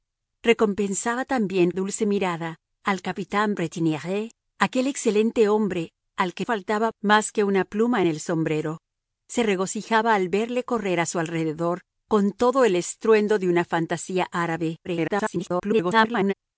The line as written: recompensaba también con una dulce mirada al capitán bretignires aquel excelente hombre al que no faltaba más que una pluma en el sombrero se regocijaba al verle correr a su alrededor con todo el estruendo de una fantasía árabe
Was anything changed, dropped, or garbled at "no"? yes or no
yes